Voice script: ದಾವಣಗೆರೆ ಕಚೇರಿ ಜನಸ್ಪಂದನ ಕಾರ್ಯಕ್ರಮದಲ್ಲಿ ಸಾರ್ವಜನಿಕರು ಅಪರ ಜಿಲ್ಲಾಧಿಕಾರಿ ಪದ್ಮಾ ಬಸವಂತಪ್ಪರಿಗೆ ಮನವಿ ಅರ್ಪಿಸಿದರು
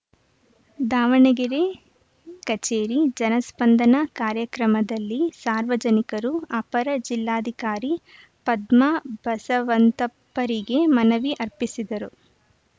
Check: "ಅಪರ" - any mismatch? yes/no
no